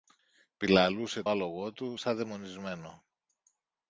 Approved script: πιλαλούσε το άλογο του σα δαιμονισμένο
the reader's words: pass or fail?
fail